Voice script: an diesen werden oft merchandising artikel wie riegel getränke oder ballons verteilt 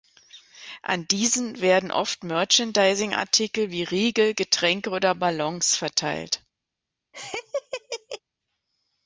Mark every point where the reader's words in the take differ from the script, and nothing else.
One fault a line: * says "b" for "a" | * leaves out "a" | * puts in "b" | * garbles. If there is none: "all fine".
all fine